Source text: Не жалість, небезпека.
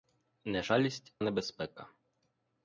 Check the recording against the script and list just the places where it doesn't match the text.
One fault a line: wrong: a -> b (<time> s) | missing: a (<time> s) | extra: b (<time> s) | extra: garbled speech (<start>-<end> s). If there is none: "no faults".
no faults